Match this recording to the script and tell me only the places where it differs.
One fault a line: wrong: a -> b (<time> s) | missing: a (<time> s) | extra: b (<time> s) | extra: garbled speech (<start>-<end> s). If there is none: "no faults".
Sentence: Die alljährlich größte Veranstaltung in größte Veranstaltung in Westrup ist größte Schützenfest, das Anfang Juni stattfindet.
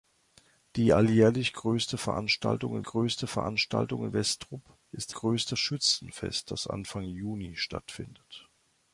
no faults